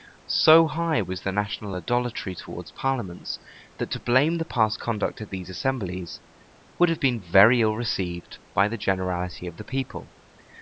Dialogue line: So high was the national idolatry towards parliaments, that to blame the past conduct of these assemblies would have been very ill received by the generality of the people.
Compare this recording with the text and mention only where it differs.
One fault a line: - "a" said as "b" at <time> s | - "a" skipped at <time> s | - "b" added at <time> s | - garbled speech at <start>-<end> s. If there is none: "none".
none